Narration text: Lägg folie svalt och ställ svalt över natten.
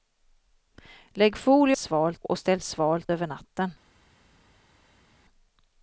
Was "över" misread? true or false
false